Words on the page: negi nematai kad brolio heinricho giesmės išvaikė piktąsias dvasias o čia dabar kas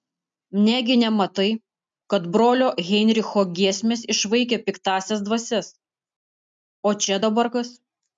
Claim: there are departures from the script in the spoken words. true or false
false